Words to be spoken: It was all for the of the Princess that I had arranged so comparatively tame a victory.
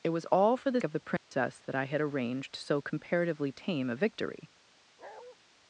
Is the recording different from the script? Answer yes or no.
no